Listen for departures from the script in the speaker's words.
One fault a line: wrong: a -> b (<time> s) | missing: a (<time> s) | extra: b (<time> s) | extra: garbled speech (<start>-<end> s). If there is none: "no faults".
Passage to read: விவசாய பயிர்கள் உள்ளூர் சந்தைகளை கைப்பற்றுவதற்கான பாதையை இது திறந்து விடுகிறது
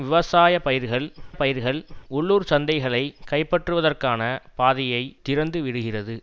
extra: பயிர்கள் (1.3 s)
missing: இது (5.0 s)